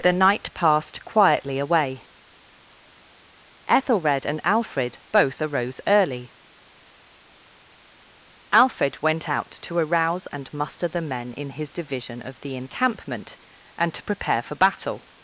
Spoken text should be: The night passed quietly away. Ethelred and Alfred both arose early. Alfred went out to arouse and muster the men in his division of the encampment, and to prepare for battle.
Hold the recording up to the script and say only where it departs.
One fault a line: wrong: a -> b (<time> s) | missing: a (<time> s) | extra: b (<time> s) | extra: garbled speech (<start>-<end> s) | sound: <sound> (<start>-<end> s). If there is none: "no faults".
no faults